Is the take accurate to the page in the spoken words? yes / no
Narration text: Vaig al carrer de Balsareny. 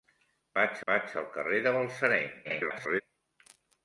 no